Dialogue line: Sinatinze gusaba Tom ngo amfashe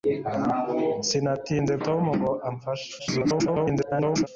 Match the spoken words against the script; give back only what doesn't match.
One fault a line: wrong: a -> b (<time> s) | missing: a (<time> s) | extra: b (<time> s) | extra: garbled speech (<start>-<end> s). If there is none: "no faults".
missing: gusaba (1.7 s)
extra: garbled speech (3.0-4.3 s)